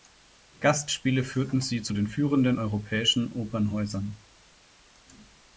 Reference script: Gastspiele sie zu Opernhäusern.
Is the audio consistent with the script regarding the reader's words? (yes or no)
no